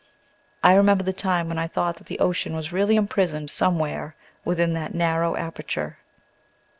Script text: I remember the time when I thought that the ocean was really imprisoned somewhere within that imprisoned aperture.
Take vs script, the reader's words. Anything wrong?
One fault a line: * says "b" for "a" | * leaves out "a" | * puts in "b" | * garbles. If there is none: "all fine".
* says "narrow" for "imprisoned"